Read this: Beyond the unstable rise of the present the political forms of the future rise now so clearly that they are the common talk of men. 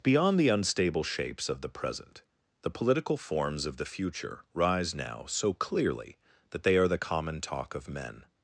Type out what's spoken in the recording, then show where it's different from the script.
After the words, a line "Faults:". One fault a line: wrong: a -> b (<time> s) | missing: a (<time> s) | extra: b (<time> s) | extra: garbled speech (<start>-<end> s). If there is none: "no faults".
Beyond the unstable shapes of the present the political forms of the future rise now so clearly that they are the common talk of men.
Faults:
wrong: rise -> shapes (1.0 s)